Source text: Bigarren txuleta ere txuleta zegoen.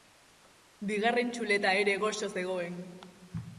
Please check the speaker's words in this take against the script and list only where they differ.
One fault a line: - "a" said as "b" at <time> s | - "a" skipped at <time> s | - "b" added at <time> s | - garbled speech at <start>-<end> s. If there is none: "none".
- "txuleta" said as "goxo" at 2.1 s